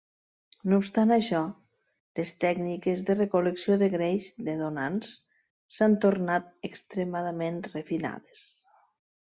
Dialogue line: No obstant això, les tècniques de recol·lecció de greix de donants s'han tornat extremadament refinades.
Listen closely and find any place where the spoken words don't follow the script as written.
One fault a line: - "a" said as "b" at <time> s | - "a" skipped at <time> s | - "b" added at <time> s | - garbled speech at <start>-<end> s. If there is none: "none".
none